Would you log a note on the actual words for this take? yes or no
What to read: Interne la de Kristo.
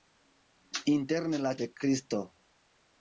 no